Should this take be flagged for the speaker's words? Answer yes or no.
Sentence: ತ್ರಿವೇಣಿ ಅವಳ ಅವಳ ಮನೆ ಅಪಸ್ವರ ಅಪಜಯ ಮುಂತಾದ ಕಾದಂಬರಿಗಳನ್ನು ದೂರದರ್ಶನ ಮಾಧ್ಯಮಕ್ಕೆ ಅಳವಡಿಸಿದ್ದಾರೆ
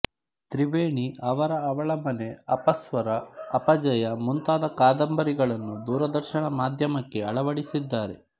yes